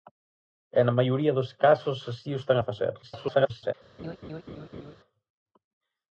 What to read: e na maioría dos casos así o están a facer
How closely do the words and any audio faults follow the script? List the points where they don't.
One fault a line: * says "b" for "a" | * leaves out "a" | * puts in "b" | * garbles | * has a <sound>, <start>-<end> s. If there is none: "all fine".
* garbles
* has a laugh, 4.0-5.0 s